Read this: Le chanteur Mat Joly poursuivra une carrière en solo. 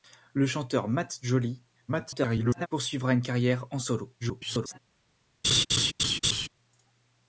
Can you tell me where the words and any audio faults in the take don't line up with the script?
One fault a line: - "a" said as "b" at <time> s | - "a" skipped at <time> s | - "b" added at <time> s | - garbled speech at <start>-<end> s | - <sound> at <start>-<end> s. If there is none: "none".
- garbled speech at 1.9-2.7 s
- garbled speech at 4.2-4.8 s
- laugh at 5.4-6.5 s